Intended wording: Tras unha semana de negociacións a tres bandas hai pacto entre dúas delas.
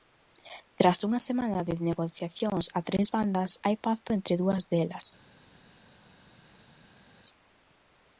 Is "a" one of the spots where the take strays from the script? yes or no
no